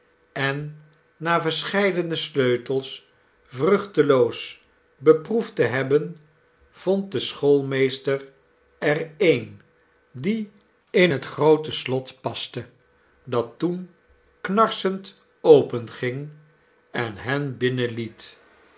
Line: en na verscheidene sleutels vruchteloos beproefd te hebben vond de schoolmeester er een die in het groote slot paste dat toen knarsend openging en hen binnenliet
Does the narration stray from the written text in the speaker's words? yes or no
no